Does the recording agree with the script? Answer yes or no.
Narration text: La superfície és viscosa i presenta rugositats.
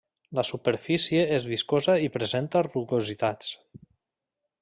yes